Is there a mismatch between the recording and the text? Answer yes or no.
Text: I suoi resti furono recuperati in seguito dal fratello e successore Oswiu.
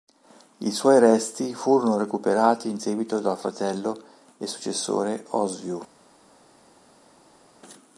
no